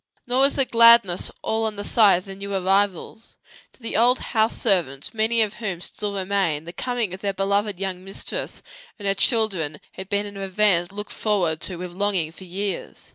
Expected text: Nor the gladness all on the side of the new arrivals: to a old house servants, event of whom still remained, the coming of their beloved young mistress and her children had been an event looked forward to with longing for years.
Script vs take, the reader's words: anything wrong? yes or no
yes